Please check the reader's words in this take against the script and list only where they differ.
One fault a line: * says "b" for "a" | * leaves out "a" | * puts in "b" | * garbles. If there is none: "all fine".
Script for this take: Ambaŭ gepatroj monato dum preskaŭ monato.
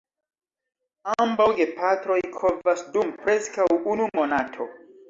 * says "kovas" for "monato"
* puts in "unu"